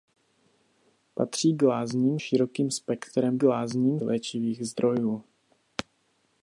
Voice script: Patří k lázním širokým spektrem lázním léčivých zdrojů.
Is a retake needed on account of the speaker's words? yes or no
no